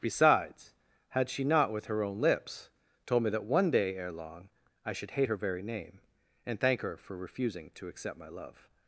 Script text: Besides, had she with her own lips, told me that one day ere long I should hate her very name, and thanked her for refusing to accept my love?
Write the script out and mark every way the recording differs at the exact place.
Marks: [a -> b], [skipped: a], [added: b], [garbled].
Besides, had she [added: not] with her own lips, told me that one day ere long I should hate her very name, and [thanked -> thank] her for refusing to accept my love?